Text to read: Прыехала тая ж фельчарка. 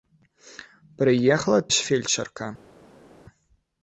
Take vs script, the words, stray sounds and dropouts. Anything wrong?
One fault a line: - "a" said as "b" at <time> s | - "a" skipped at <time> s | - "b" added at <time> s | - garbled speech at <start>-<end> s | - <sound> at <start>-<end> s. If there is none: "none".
- "тая" skipped at 1.6 s